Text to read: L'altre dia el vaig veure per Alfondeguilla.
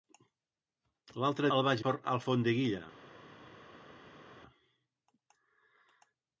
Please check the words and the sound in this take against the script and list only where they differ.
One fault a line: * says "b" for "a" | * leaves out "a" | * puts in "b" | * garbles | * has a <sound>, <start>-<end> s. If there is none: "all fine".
* leaves out "dia"
* leaves out "veure"